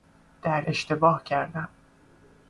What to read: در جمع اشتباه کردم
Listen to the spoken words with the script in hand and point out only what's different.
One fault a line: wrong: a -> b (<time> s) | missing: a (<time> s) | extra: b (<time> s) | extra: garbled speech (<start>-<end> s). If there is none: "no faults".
missing: جمع (0.6 s)